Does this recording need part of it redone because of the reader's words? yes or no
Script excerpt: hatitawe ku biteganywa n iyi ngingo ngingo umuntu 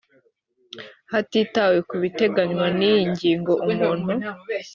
yes